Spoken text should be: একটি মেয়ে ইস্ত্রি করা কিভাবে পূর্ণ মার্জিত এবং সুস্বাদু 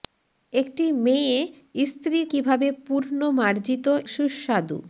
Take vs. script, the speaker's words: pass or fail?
fail